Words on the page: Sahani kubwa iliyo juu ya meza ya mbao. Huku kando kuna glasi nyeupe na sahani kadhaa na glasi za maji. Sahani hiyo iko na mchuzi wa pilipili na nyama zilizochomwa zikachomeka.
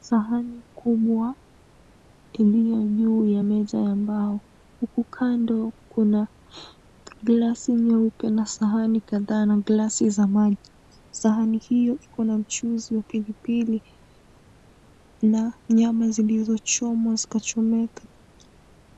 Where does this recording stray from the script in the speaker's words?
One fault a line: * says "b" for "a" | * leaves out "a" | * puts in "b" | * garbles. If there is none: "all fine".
all fine